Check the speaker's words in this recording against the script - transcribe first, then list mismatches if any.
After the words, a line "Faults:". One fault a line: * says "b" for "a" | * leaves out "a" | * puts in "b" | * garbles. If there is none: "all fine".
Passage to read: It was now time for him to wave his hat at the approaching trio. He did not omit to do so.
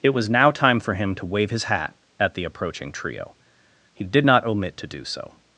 It was now time for him to wave his hat at the approaching trio. He did not omit to do so.
Faults:
all fine